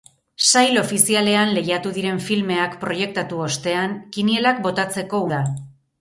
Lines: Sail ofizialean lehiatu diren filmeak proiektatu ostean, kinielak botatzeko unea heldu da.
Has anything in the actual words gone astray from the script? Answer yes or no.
yes